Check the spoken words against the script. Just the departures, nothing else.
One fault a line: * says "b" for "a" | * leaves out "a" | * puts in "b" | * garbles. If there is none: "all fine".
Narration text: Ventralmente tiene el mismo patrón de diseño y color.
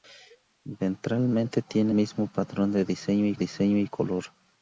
* leaves out "el"
* puts in "diseño y"